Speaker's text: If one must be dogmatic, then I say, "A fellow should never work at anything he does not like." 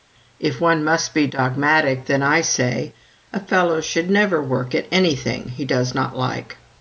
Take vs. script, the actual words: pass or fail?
pass